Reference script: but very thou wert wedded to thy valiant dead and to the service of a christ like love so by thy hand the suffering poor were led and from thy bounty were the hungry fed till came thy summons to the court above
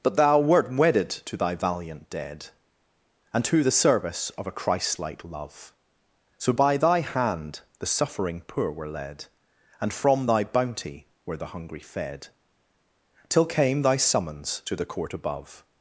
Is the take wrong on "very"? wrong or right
wrong